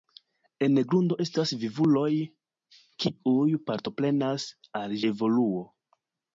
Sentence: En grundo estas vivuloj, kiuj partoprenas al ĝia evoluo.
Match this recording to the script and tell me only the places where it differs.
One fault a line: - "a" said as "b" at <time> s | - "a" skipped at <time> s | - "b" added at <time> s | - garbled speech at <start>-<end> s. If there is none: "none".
- "ĝia" skipped at 5.0 s